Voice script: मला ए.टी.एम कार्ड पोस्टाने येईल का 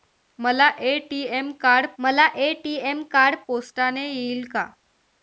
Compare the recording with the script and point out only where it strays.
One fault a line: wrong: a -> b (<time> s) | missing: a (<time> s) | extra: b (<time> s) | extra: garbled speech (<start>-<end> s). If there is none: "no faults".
extra: मला ए.टी.एम कार्ड (2.0 s)